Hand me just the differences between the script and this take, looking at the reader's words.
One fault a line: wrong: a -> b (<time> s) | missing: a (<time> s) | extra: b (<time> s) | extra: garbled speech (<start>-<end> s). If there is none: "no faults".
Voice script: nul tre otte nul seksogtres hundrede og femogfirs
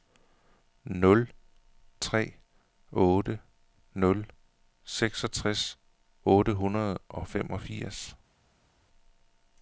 extra: otte (6.2 s)